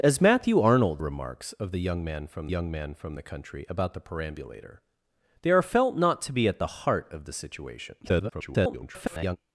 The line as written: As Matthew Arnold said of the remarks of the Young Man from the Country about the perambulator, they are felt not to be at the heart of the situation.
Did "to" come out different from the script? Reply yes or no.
no